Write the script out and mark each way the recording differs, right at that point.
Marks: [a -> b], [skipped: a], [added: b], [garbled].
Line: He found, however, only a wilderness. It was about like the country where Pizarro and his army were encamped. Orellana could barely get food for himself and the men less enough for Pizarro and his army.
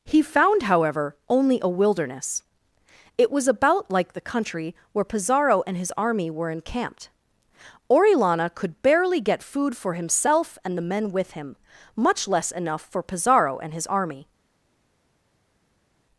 He found, however, only a wilderness. It was about like the country where Pizarro and his army were encamped. Orellana could barely get food for himself and the men [added: with him much] less enough for Pizarro and his army.